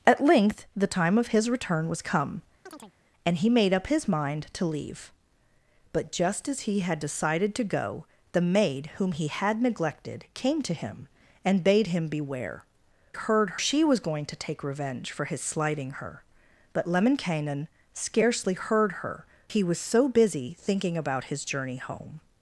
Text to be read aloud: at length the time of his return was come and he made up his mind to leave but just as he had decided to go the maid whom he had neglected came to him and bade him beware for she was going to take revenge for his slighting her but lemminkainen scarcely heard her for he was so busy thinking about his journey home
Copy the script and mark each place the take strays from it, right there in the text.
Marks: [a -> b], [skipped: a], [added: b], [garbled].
at length the time of his return was come and he made up his mind to leave but just as he had decided to go the maid whom he had neglected came to him and bade him beware [for -> heard] she was going to take revenge for his slighting her but lemminkainen scarcely heard her [skipped: for] he was so busy thinking about his journey home